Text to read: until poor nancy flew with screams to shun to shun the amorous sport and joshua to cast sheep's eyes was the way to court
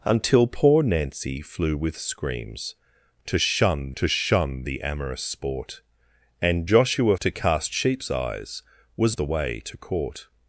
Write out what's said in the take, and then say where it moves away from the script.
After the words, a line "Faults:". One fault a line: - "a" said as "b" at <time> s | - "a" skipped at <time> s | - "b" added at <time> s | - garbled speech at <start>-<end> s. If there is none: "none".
until poor nancy flew with screams to shun to shun the amorous sport and joshua to cast sheep's eyes was the way to court
Faults:
none